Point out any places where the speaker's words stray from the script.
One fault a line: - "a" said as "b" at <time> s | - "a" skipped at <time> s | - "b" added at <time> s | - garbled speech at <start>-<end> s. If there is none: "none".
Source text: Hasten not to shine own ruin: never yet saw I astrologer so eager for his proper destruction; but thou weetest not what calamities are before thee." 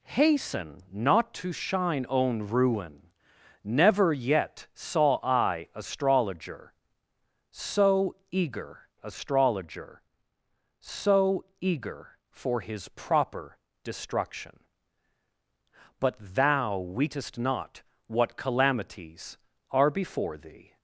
- "astrologer so eager" added at 9.0 s